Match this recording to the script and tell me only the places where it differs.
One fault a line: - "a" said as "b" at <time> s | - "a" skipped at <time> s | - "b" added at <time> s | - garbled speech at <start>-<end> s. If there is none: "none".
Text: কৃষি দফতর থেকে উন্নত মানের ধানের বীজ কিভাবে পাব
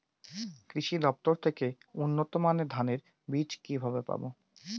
none